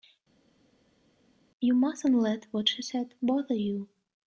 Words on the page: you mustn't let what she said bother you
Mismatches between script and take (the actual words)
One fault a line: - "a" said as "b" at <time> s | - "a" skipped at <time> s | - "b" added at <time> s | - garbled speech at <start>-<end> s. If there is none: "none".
none